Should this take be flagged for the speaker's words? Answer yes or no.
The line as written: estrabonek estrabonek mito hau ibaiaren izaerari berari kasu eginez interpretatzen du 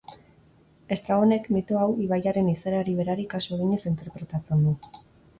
yes